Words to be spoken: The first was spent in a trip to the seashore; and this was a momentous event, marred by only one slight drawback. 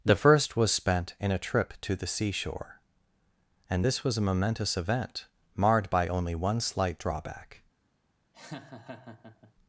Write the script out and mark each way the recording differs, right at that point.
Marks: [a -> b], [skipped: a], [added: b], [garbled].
The first was spent in a trip to the seashore; and this was a momentous event, marred by only one slight drawback.